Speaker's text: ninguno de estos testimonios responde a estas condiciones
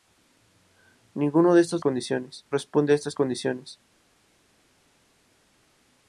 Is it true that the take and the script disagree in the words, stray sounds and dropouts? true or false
true